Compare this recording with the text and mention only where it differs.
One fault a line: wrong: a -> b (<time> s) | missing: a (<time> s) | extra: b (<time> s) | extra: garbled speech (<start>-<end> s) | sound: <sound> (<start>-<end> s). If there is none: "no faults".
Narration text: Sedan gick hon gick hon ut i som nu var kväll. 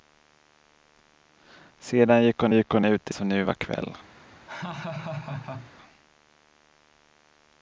sound: laugh (4.5-5.7 s)